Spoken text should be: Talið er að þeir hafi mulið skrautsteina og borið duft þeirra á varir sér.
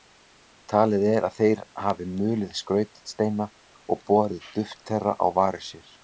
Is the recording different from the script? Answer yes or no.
no